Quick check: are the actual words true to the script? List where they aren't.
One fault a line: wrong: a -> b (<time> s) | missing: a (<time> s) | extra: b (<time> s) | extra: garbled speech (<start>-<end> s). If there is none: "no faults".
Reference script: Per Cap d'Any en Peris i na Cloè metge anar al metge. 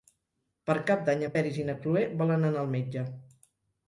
wrong: metge -> volen (2.2 s)